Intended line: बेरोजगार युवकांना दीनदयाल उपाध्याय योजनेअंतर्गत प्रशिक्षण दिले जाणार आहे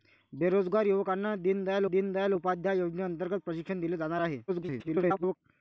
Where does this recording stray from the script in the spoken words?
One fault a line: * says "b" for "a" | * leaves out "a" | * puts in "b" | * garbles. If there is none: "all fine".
* puts in "दीनदयाल"
* garbles